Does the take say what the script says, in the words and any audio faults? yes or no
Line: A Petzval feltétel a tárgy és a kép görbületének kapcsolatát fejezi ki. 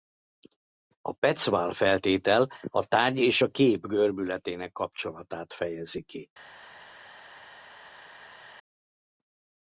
yes